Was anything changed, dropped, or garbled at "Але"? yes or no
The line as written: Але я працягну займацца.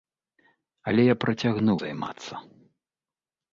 no